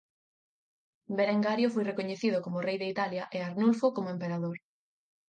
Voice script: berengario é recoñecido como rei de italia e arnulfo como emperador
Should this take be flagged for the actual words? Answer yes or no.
yes